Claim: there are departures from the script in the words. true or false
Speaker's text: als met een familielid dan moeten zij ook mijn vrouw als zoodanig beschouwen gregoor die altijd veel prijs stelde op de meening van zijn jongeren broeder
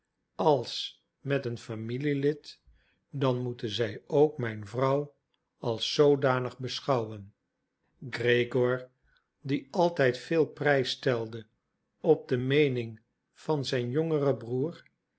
false